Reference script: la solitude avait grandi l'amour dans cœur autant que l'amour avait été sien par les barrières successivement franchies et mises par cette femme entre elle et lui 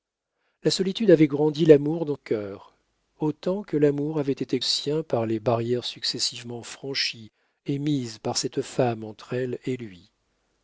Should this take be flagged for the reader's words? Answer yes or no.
no